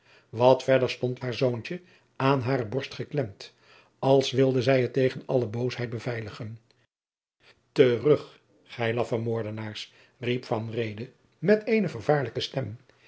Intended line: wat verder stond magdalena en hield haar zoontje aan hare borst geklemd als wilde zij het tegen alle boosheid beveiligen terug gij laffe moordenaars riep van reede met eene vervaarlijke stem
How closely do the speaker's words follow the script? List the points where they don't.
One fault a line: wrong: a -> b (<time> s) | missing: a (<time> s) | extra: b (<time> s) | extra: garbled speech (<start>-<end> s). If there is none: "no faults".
missing: magdalena en hield (1.2 s)